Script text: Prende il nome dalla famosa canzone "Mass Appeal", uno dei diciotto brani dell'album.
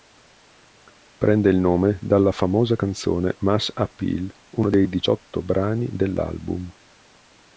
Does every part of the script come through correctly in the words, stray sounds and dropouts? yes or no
yes